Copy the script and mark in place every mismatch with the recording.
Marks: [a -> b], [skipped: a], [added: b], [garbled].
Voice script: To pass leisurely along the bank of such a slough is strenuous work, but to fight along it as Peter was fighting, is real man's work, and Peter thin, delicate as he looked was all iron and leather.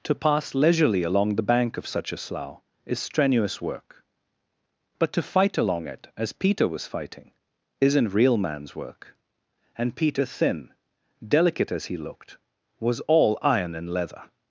To pass leisurely along the bank of such a slough is strenuous work, but to fight along it as Peter was fighting, [is -> isn't] real man's work, and Peter thin, delicate as he looked was all iron and leather.